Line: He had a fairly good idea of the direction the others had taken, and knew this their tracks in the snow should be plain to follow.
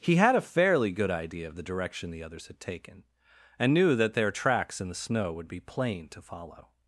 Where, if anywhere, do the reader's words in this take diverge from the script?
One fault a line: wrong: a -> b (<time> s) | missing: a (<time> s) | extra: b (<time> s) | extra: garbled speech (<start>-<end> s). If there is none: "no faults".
wrong: this -> that (4.0 s)
wrong: should -> would (5.3 s)